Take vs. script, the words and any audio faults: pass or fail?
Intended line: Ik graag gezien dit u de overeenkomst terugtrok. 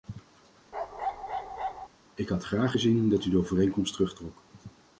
fail